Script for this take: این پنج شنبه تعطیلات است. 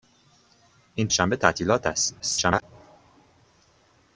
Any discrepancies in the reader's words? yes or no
yes